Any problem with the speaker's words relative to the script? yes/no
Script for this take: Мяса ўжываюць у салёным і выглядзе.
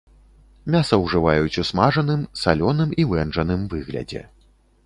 yes